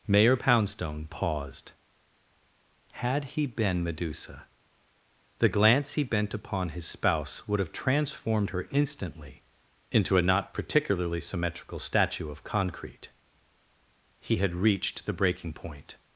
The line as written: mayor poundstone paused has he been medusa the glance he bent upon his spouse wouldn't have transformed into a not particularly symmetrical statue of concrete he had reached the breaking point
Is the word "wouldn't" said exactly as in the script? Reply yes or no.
no